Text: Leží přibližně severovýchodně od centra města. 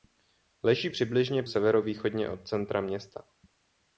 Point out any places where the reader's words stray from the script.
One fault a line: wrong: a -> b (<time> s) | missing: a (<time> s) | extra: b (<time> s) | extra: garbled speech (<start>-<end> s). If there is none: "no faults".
no faults